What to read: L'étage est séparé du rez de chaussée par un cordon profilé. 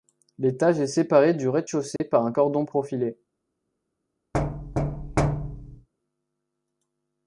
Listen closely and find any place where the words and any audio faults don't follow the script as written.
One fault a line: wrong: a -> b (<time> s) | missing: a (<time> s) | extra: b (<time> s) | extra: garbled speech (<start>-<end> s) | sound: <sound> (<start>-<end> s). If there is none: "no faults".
sound: dropout (2.0-2.0 s)
sound: thud (4.3-5.9 s)